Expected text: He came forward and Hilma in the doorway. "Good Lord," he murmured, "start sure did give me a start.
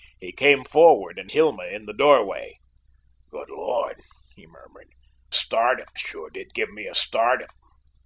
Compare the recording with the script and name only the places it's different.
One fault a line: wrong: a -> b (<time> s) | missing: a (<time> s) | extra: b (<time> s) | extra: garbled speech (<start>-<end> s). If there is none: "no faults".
no faults